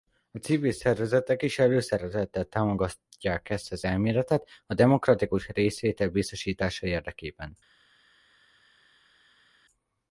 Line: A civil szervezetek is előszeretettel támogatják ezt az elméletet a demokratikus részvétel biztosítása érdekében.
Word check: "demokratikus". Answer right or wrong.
right